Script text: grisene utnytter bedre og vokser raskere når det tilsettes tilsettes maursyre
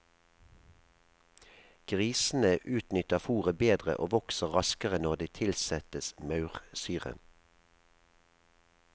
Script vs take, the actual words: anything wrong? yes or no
yes